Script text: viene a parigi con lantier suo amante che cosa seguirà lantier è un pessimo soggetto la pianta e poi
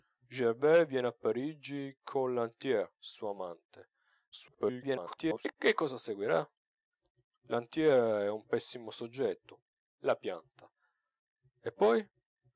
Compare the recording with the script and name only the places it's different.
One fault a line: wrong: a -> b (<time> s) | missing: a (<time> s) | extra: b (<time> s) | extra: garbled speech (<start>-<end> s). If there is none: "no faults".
extra: garbled speech (4.3-5.5 s)